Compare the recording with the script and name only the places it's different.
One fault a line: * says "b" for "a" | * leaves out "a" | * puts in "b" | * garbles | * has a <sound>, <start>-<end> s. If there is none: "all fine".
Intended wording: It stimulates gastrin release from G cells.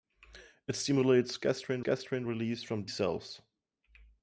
* puts in "gastrin"
* leaves out "G"